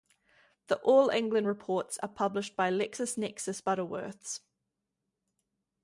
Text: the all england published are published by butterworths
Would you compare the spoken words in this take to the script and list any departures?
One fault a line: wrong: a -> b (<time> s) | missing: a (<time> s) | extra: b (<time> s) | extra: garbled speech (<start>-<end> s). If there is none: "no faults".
wrong: published -> reports (1.4 s)
extra: lexisnexis (2.7 s)